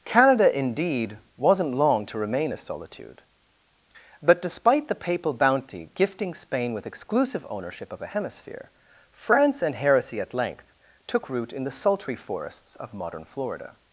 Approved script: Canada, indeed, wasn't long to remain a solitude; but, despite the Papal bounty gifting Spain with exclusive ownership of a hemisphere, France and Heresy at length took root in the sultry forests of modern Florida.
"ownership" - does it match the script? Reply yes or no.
yes